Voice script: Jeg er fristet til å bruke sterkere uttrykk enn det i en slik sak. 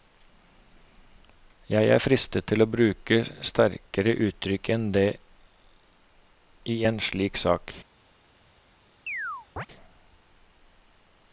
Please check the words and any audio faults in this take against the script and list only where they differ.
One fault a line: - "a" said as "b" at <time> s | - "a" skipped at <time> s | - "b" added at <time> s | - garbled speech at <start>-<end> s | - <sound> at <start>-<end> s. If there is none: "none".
- chirp at 9.1-9.7 s